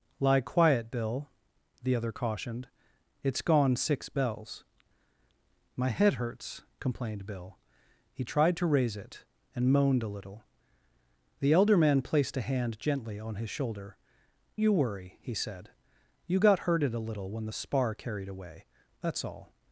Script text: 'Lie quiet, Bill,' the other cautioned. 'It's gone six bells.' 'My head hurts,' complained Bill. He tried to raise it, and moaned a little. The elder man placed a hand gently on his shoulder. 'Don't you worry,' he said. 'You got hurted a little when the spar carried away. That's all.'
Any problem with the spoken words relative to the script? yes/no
yes